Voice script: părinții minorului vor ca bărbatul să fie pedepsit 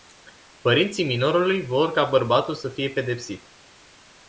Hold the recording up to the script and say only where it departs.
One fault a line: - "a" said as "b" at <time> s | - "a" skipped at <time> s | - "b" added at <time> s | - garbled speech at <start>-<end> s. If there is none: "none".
none